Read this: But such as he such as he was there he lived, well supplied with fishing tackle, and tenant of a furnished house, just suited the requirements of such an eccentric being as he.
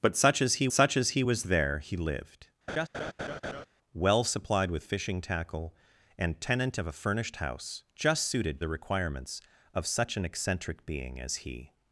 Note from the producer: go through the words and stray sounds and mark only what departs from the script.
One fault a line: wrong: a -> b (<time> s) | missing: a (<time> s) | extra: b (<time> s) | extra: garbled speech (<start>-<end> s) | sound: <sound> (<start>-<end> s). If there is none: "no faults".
sound: laugh (2.7-3.7 s)